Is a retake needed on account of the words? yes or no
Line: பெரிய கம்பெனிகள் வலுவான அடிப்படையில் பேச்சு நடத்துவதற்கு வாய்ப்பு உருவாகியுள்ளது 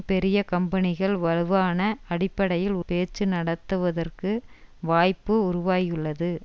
no